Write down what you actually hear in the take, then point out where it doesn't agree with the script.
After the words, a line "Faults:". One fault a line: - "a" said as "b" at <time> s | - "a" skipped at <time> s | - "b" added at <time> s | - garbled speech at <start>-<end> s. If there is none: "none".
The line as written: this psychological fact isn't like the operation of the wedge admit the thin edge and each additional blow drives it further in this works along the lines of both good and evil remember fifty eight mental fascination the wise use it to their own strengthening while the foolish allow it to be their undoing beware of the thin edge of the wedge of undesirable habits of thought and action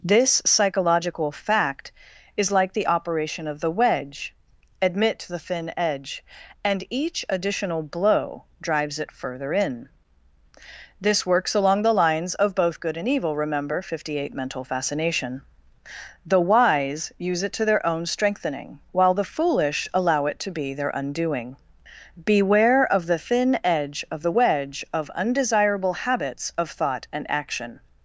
this psychological fact is like the operation of the wedge admit the thin edge and each additional blow drives it further in this works along the lines of both good and evil remember fifty eight mental fascination the wise use it to their own strengthening while the foolish allow it to be their undoing beware of the thin edge of the wedge of undesirable habits of thought and action
Faults:
- "isn't" said as "is" at 2.4 s